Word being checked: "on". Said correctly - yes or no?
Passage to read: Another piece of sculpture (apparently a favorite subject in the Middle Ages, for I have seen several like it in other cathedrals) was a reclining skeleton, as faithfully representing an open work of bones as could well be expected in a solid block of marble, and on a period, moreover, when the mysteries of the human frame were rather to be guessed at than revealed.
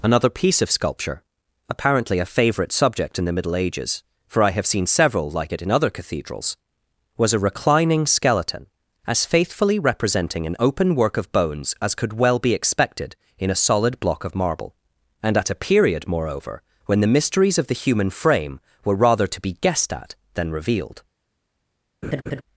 no